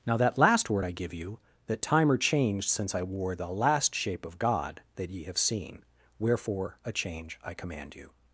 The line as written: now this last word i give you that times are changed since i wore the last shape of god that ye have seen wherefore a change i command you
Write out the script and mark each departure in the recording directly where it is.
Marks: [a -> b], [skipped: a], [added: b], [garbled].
now [this -> that] last word i give you that [times -> time] are changed since i wore the last shape of god that ye have seen wherefore a change i command you